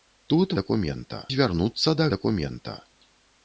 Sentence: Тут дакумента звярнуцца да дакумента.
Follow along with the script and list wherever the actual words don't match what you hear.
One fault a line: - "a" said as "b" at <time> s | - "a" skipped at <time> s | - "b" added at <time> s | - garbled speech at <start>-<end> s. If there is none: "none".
none